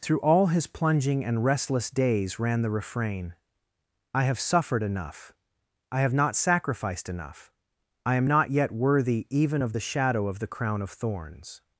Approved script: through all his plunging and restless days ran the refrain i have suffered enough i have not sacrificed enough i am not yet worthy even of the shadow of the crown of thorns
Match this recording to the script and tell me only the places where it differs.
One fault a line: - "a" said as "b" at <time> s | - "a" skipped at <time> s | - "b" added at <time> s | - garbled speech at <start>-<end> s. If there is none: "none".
none